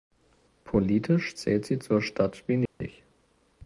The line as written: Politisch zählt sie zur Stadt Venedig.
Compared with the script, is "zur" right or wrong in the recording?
right